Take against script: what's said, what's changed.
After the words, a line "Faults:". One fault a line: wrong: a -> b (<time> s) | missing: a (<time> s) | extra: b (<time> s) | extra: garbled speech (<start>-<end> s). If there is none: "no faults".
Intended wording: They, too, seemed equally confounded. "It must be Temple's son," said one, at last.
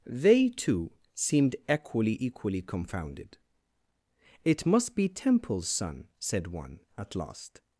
They, too, seemed equally equally confounded. "It must be Temple's son," said one, at last.
Faults:
extra: equally (2.2 s)